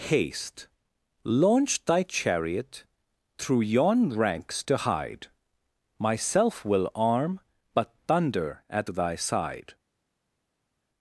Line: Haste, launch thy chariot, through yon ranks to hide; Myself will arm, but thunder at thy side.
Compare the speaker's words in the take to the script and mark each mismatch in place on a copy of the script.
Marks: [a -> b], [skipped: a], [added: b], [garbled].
Haste, launch thy chariot, through yon ranks to hide; Myself will arm, but thunder at thy side.